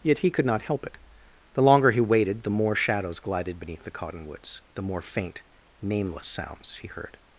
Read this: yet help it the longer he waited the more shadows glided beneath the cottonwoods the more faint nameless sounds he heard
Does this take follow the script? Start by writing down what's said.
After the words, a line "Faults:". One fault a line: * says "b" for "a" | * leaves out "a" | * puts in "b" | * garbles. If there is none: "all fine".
yet he could not help it the longer he waited the more shadows glided beneath the cottonwoods the more faint nameless sounds he heard
Faults:
* puts in "he could not"